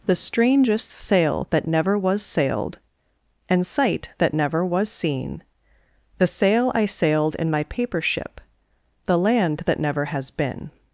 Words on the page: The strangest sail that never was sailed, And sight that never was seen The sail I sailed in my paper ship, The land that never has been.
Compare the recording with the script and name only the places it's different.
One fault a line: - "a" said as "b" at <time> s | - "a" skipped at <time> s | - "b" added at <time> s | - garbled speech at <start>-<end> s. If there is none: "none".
none